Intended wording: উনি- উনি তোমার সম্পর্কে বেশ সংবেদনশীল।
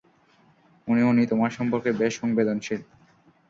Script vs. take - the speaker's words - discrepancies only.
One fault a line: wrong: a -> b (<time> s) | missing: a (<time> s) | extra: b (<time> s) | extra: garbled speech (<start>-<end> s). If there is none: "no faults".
no faults